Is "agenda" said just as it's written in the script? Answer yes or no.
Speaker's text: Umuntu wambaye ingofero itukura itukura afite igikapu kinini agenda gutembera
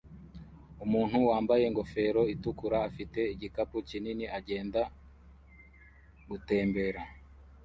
yes